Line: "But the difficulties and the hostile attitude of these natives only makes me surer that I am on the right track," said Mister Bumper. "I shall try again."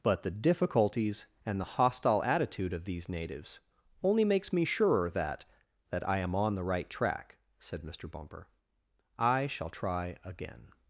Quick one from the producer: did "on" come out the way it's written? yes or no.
yes